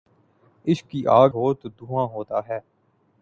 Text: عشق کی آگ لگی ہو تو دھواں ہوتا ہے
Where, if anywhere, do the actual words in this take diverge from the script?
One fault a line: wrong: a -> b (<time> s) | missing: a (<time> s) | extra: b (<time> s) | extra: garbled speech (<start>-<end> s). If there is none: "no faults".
missing: لگی (1.3 s)